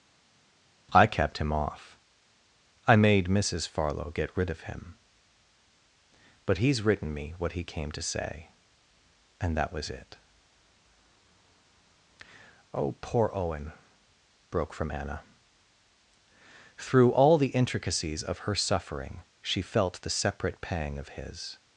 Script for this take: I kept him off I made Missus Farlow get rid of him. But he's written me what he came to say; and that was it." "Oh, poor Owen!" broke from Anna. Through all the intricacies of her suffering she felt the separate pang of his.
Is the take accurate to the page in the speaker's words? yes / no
yes